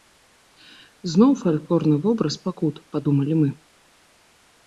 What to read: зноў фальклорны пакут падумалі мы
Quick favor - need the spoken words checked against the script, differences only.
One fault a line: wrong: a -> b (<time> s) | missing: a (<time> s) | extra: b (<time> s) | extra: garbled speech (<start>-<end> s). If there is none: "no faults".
extra: вобраз (2.1 s)